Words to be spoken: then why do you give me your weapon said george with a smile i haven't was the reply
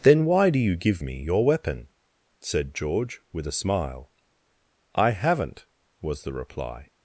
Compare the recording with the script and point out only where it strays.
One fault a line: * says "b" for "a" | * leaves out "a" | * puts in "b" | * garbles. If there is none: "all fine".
all fine